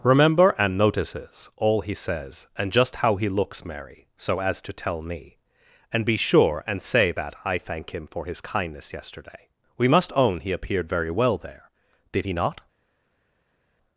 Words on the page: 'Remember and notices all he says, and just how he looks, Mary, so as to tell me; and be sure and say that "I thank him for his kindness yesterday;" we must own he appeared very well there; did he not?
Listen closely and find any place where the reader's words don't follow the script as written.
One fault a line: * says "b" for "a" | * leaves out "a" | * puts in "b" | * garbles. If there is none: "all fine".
all fine